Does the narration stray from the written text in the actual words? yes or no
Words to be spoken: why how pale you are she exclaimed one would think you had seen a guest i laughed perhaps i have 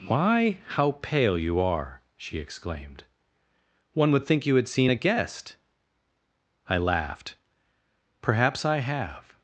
no